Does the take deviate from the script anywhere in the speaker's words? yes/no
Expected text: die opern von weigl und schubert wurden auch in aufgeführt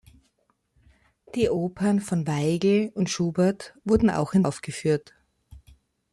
no